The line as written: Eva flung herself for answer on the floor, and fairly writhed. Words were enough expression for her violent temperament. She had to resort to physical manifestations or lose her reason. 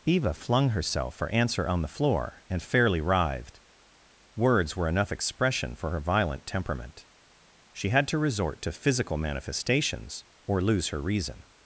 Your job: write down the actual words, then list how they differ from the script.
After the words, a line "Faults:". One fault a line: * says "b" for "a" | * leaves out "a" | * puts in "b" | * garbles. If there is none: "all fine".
Eva flung herself for answer on the floor, and fairly writhed. Words were enough expression for her violent temperament. She had to resort to physical manifestations or lose her reason.
Faults:
all fine